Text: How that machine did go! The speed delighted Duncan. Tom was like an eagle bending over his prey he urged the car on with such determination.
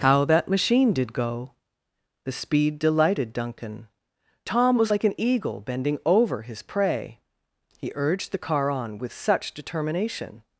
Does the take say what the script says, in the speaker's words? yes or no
yes